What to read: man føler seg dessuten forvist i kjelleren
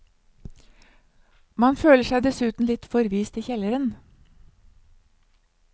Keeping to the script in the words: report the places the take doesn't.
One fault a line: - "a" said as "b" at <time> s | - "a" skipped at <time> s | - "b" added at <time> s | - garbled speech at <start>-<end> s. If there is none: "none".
- "litt" added at 2.7 s